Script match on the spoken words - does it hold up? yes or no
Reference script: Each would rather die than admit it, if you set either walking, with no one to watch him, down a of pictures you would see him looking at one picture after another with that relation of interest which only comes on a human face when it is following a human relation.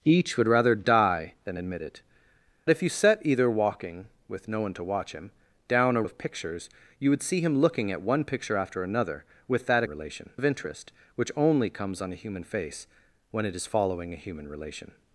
yes